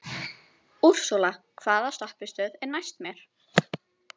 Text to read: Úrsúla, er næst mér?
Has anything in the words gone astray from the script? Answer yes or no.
yes